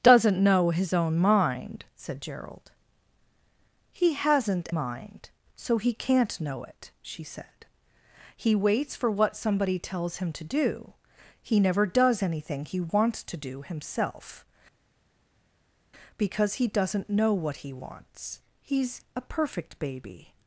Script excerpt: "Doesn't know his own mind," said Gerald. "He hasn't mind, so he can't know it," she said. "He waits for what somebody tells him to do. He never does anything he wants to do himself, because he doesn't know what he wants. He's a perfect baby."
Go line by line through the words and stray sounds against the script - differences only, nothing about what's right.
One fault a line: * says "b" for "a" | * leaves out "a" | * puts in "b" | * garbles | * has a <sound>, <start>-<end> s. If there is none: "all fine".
all fine